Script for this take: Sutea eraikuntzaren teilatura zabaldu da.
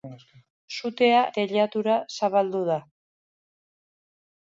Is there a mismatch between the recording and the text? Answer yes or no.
yes